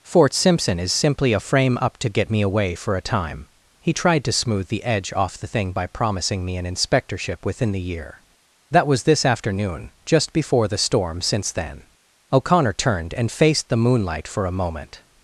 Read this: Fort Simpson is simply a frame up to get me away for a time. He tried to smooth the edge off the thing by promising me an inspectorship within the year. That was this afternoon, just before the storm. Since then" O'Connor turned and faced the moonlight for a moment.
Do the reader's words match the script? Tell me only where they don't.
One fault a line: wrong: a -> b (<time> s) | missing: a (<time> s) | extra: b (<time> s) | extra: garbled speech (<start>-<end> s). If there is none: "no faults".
no faults